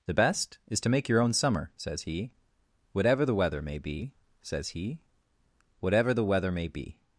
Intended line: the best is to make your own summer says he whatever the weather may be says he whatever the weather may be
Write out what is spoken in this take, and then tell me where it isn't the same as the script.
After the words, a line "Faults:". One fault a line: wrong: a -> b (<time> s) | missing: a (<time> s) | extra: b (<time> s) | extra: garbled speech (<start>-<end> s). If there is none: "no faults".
the best is to make your own summer says he whatever the weather may be says he whatever the weather may be
Faults:
no faults